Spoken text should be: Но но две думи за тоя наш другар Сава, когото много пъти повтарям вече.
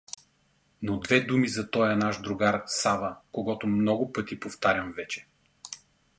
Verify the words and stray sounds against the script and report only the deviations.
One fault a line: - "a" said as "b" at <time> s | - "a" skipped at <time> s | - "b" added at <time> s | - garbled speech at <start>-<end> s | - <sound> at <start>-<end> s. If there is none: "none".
- "но" skipped at 1.0 s